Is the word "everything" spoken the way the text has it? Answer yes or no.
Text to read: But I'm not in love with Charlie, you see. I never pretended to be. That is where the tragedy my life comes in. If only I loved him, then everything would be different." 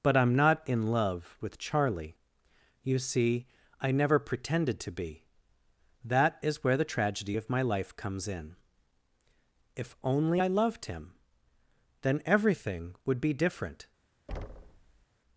yes